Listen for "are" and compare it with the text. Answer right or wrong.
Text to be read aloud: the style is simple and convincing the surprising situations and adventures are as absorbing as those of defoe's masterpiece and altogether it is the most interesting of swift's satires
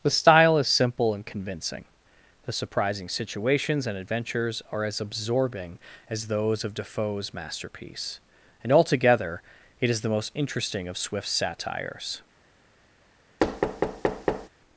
right